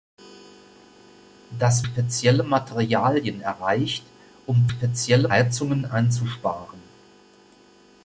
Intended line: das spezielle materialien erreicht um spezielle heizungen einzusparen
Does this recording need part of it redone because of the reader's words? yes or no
no